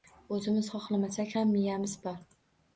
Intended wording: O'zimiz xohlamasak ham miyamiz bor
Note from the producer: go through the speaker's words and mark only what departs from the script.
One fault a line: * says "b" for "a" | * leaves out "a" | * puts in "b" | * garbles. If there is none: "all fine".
all fine